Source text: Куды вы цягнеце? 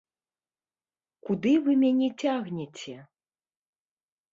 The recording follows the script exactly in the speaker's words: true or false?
false